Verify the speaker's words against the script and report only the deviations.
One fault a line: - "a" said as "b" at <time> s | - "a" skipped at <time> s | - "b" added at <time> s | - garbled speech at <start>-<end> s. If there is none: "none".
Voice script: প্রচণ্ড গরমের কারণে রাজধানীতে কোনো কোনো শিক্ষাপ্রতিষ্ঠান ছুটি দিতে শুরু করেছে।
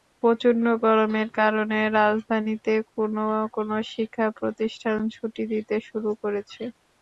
none